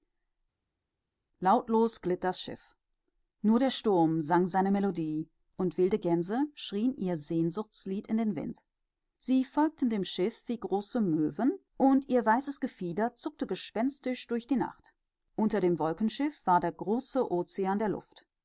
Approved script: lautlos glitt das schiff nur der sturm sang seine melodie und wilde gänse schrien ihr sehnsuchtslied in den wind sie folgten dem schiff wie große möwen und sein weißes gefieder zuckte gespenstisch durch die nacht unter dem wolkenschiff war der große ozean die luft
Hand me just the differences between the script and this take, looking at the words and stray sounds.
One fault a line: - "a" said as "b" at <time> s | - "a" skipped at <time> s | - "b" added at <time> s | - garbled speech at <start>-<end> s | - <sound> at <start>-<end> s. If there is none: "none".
- "sein" said as "ihr" at 12.1 s
- "die" said as "der" at 17.8 s